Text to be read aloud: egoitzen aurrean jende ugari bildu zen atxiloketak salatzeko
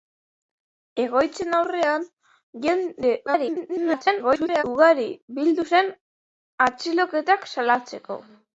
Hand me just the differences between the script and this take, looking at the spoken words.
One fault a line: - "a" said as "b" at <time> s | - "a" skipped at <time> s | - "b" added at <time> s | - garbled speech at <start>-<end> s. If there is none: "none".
- garbled speech at 3.3-4.6 s